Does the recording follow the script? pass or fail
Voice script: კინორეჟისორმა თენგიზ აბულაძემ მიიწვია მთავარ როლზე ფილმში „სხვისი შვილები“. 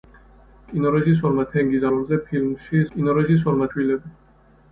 fail